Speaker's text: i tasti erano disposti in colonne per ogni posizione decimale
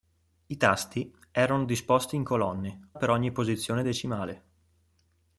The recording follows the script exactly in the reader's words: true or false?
true